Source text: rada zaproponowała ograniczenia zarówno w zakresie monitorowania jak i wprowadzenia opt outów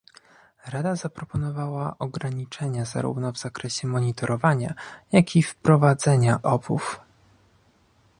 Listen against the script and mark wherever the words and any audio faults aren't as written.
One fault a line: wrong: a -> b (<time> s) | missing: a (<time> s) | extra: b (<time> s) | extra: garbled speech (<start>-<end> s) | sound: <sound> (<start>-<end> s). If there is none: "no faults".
missing: opt (6.4 s)